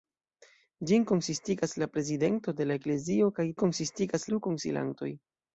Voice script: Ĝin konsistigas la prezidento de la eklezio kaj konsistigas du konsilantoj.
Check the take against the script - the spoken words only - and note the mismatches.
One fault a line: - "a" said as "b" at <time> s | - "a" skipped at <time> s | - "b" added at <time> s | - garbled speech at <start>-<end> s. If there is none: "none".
none